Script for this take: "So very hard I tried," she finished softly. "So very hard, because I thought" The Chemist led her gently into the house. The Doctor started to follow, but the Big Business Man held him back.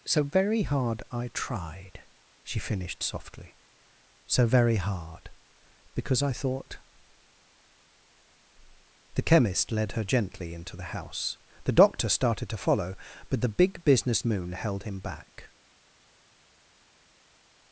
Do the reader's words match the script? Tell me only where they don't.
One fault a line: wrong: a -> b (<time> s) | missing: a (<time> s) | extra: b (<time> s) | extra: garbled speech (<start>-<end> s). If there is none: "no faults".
wrong: Man -> Moon (14.2 s)